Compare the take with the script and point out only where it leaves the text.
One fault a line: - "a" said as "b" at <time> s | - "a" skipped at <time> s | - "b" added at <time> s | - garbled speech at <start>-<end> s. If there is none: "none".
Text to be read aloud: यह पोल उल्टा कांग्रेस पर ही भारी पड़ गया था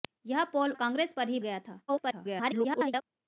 - "उल्टा" skipped at 0.7 s
- "भारी पड़" skipped at 1.4 s
- garbled speech at 1.9-3.0 s